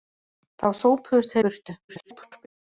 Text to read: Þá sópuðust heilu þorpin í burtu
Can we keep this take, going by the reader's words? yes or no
no